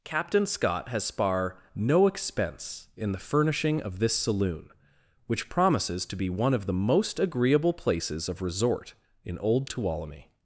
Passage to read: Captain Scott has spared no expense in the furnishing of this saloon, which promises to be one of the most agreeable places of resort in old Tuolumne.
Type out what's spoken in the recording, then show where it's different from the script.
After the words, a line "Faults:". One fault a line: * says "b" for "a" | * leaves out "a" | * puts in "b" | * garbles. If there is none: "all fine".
Captain Scott has spar no expense in the furnishing of this saloon, which promises to be one of the most agreeable places of resort in old Tuolumne.
Faults:
* says "spar" for "spared"